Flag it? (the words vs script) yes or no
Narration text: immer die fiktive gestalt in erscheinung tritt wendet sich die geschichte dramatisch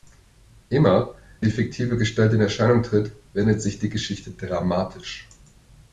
no